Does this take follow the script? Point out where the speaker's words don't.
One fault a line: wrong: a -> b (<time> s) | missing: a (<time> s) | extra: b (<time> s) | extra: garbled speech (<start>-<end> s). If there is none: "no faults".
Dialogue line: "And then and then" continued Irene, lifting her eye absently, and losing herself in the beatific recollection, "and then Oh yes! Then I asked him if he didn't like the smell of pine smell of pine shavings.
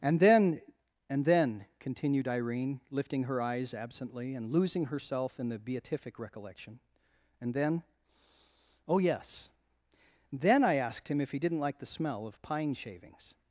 wrong: eye -> eyes (3.4 s)
missing: smell of pine (12.7 s)